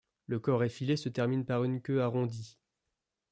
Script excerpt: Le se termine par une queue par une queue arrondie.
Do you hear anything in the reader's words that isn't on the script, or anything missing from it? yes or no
yes